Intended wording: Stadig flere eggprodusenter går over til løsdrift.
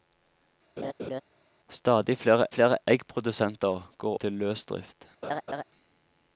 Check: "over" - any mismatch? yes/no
yes